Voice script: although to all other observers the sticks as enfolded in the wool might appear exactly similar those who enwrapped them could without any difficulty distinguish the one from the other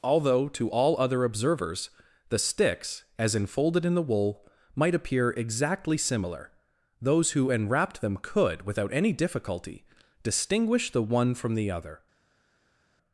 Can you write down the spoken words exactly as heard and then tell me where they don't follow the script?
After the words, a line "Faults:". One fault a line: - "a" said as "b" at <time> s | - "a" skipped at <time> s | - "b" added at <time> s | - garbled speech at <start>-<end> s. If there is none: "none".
although to all other observers the sticks as enfolded in the wool might appear exactly similar those who enwrapped them could without any difficulty distinguish the one from the other
Faults:
none